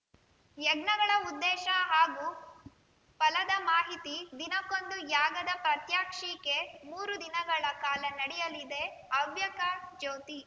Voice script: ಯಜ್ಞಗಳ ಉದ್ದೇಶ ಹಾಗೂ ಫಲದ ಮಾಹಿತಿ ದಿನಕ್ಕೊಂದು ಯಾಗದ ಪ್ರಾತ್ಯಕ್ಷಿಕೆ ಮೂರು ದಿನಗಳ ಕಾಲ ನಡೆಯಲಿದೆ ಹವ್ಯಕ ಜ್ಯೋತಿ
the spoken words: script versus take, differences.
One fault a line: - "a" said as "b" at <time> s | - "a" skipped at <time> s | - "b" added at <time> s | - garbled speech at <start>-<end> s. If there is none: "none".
none